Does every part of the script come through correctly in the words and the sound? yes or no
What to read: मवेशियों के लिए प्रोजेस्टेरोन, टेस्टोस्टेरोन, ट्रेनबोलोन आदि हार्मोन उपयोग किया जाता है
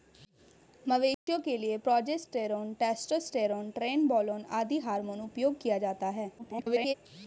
no